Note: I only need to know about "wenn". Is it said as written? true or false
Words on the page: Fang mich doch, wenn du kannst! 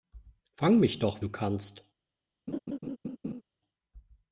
false